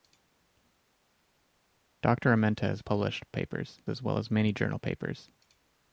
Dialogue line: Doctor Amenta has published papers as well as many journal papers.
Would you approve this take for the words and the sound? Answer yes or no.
yes